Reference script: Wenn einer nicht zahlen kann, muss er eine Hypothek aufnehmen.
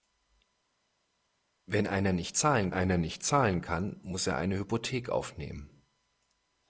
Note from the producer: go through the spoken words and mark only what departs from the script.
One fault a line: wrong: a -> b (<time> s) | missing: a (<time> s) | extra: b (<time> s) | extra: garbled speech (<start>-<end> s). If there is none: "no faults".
extra: einer nicht zahlen (2.7 s)